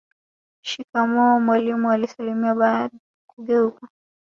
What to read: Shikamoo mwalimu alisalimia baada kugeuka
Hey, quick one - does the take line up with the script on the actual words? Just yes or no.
yes